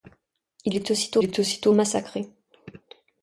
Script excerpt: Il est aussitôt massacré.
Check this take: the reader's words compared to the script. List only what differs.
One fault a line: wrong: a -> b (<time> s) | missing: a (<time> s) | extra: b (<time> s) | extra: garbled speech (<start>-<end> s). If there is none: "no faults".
extra: est aussitôt (1.2 s)